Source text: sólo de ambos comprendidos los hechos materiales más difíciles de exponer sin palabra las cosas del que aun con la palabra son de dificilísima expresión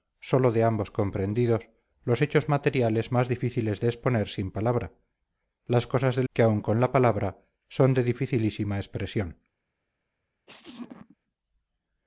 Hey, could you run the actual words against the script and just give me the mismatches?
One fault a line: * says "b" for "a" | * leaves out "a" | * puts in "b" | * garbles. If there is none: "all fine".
all fine